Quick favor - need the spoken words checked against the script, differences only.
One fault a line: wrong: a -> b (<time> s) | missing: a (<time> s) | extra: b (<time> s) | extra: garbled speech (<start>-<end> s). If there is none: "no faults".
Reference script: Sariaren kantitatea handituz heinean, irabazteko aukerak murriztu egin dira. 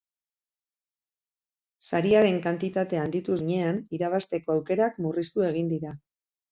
no faults